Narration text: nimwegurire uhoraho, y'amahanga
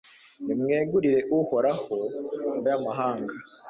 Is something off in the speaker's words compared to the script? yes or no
no